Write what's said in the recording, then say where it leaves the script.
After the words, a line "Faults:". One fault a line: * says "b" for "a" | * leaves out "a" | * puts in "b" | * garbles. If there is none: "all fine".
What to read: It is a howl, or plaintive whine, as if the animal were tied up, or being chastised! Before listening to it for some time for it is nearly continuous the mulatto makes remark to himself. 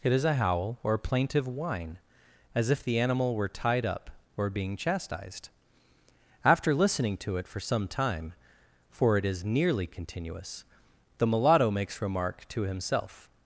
It is a howl, or plaintive whine, as if the animal were tied up, or being chastised! After listening to it for some time for it is nearly continuous the mulatto makes remark to himself.
Faults:
* says "After" for "Before"